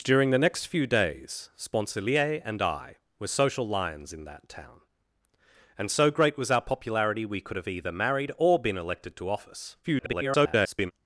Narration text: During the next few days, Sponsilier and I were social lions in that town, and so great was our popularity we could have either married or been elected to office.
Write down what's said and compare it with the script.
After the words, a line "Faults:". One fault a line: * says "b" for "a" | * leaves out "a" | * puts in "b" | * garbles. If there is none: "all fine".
During the next few days, Sponsilier and I were social lions in that town, and so great was our popularity we could have either married or been elected to office. [garbled]
Faults:
* garbles